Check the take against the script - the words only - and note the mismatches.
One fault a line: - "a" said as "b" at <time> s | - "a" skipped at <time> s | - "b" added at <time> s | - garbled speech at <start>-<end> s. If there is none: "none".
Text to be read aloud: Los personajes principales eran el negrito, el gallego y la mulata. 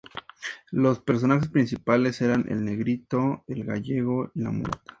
none